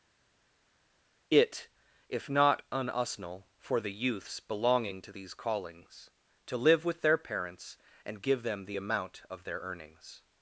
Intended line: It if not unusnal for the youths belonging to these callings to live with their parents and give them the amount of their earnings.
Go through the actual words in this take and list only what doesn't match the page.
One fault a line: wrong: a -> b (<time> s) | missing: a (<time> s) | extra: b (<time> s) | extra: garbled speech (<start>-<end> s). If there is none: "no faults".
no faults